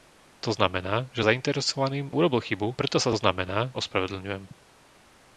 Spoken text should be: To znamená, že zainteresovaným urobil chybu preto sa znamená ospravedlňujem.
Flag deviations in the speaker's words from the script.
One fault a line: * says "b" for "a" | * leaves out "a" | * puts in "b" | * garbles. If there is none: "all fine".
all fine